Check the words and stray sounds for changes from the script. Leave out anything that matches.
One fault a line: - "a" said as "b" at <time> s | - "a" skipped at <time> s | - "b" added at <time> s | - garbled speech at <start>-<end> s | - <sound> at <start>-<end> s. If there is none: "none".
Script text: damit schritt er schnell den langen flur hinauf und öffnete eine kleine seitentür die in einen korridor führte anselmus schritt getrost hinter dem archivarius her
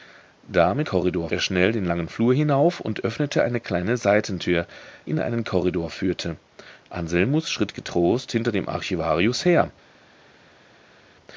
- "schritt" said as "korridor" at 0.8 s
- "die" skipped at 4.7 s